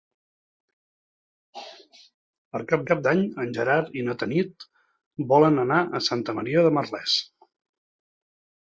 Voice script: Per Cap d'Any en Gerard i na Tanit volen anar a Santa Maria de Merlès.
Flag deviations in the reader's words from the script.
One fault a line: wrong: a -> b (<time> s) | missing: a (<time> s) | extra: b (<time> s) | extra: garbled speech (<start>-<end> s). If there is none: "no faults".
extra: Cap (2.9 s)